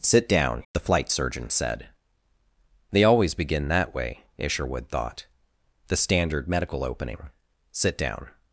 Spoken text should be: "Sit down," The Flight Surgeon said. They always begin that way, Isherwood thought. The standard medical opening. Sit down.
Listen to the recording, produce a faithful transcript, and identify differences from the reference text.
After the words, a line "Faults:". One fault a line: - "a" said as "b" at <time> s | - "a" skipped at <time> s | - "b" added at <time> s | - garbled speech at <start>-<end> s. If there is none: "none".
"Sit down," The Flight Surgeon said. They always begin that way, Isherwood thought. The standard medical opening. Sit down.
Faults:
none